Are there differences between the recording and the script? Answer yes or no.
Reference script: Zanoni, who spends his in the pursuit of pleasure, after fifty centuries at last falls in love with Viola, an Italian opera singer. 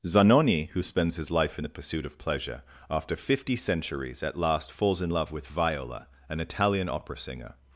yes